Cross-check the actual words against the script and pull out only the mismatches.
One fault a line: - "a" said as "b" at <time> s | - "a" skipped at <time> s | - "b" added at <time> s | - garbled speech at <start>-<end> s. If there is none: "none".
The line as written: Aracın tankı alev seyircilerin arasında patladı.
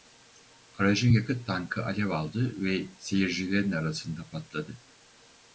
- "yakıt" added at 1.1 s
- "aldı ve" added at 2.1 s